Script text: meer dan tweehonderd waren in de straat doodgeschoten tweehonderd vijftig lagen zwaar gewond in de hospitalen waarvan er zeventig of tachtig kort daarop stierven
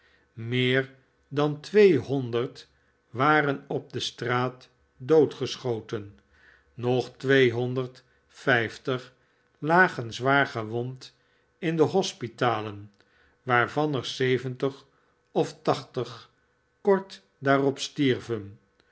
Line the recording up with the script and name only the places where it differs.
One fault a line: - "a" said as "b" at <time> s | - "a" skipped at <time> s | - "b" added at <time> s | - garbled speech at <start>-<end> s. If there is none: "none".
- "in" said as "op" at 3.7 s
- "nog" added at 6.7 s